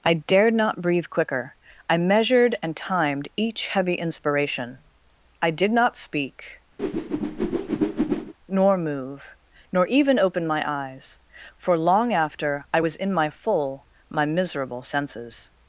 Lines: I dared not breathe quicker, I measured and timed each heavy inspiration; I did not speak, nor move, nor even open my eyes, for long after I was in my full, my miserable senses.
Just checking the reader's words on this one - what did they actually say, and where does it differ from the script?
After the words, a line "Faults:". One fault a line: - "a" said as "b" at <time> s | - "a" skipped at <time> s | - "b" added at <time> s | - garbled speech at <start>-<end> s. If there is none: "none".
I dared not breathe quicker, I measured and timed each heavy inspiration; I did not speak, nor move, nor even open my eyes, for long after I was in my full, my miserable senses.
Faults:
none